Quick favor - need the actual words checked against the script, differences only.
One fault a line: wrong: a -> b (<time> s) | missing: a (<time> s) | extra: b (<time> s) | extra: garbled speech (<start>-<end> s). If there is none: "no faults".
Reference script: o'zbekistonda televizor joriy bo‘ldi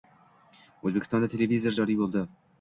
no faults